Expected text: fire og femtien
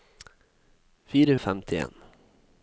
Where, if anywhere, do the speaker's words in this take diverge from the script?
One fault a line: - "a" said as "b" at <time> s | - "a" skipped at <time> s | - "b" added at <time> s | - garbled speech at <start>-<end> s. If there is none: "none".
none